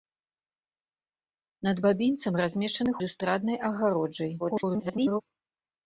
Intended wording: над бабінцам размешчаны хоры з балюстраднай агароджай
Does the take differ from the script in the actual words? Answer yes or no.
yes